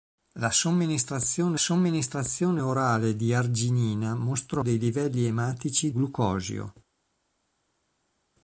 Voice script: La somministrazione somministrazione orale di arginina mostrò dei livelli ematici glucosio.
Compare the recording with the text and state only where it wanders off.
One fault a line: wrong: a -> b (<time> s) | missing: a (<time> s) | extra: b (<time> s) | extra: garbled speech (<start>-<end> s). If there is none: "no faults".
no faults